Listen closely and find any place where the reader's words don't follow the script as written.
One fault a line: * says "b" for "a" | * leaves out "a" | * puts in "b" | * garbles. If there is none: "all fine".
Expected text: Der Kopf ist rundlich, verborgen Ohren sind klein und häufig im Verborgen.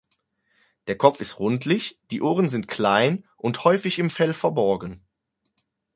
* says "die" for "verborgen"
* puts in "Fell"